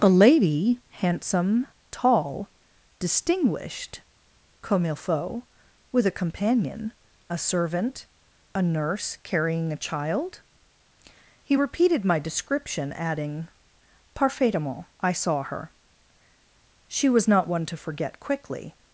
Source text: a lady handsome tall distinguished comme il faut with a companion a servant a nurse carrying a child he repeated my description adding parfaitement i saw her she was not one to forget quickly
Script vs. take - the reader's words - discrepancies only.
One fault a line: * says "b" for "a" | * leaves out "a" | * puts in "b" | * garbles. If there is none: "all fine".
all fine